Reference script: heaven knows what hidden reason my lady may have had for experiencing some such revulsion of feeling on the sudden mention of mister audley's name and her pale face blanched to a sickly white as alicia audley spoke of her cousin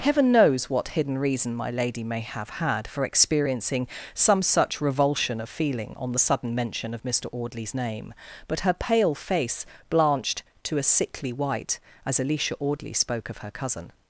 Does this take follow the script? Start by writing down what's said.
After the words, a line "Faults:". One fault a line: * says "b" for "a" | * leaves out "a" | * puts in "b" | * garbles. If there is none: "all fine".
heaven knows what hidden reason my lady may have had for experiencing some such revulsion of feeling on the sudden mention of mister audley's name but her pale face blanched to a sickly white as alicia audley spoke of her cousin
Faults:
* says "but" for "and"